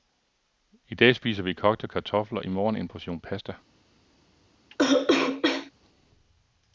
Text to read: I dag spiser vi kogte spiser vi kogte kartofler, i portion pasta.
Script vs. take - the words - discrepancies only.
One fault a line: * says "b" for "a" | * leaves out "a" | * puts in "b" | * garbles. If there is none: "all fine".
* says "kartofler i morgen en" for "spiser vi kogte kartofler i"